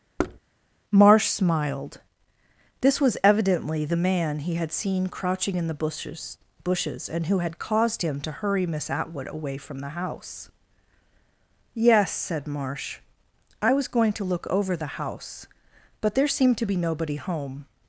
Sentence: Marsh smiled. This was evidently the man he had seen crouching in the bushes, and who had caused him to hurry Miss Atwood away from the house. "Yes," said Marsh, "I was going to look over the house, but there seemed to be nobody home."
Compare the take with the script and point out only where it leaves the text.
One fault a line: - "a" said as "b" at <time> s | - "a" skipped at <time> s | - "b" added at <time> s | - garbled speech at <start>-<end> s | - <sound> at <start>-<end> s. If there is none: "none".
- thud at 0.2-0.4 s
- "bushes" added at 6.6 s